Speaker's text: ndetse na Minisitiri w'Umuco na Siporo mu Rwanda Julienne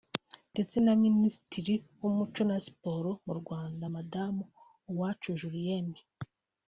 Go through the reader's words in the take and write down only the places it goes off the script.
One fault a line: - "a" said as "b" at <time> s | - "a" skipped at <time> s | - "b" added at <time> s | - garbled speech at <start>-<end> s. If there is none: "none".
- "Madamu Uwacu" added at 3.9 s